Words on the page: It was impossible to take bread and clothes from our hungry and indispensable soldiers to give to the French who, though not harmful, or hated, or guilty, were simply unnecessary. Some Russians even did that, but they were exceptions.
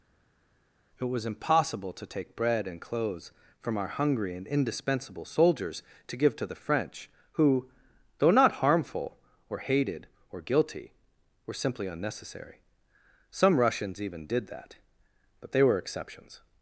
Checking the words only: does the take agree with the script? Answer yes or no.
yes